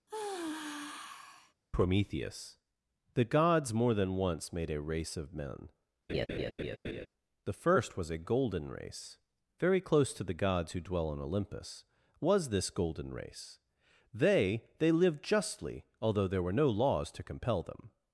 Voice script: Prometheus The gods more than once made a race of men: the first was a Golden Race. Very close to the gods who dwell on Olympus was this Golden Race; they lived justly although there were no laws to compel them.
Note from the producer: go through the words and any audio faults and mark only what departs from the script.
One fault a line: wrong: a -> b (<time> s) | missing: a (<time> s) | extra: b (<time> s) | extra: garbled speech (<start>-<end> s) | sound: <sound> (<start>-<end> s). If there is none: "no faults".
sound: sigh (0.1-1.5 s)
sound: laugh (6.1-7.1 s)
extra: they (14.8 s)